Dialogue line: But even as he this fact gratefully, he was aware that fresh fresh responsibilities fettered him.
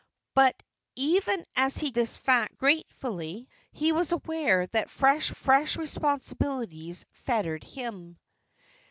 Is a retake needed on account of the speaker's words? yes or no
no